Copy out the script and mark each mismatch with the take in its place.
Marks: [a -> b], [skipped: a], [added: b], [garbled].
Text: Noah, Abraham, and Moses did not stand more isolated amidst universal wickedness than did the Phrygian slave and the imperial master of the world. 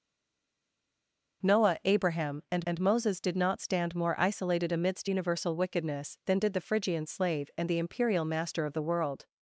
Noah, Abraham, and [added: and] Moses did not stand more isolated amidst universal wickedness than did the Phrygian slave and the imperial master of the world.